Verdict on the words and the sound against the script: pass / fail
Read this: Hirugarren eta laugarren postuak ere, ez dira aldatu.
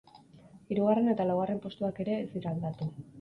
pass